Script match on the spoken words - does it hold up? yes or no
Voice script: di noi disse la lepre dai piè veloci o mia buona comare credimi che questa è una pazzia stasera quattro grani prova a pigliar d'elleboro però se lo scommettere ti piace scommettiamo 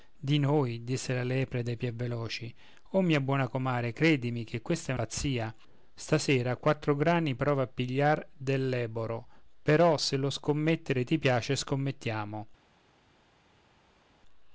no